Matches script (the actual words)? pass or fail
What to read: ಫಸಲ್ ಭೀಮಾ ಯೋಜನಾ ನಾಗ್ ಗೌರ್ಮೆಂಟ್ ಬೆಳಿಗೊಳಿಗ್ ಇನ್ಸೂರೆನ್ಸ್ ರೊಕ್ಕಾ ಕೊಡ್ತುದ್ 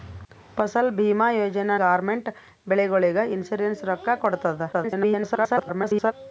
fail